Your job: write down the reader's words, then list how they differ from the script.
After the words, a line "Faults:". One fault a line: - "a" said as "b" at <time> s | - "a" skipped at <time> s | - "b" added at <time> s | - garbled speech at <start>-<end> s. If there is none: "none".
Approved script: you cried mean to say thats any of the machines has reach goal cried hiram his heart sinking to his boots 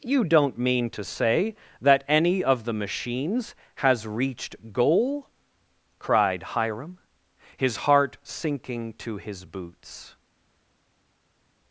you don't mean to say that any of the machines has reached goal cried hiram his heart sinking to his boots
Faults:
- "cried" said as "don't" at 0.2 s
- "thats" said as "that" at 1.8 s
- "reach" said as "reached" at 4.1 s